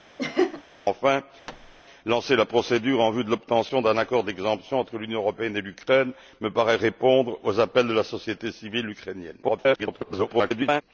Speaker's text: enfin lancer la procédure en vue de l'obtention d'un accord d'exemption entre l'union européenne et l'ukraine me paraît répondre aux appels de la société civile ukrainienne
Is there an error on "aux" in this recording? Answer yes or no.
no